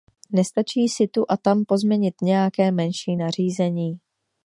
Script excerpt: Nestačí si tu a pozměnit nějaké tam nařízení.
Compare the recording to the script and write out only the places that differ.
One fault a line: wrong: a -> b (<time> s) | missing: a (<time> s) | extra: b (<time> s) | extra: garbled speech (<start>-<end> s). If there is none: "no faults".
extra: tam (1.4 s)
wrong: tam -> menší (2.7 s)